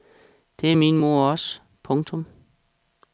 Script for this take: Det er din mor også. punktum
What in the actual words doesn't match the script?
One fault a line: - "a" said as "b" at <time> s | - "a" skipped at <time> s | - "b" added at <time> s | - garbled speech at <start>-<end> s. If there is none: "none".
- "din" said as "min" at 0.7 s